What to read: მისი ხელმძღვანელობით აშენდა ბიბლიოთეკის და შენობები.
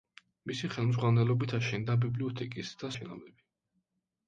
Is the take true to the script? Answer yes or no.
yes